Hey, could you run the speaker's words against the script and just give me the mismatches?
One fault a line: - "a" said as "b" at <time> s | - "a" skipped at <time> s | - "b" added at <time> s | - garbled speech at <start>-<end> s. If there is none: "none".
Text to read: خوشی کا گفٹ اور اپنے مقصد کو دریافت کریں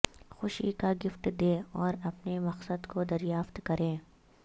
- "دیں" added at 1.4 s